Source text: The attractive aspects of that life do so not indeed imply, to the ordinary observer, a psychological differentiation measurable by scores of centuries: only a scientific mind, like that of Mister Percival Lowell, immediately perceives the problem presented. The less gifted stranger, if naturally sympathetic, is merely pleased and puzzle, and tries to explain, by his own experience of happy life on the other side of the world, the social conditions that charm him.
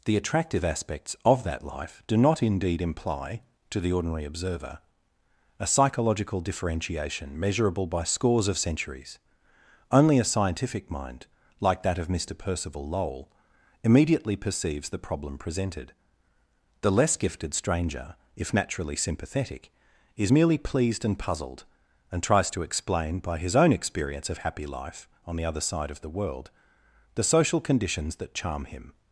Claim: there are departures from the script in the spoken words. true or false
true